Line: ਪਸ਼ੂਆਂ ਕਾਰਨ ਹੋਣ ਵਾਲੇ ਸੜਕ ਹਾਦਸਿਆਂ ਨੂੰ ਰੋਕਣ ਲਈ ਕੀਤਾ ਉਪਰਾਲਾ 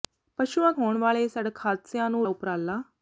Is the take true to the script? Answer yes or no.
no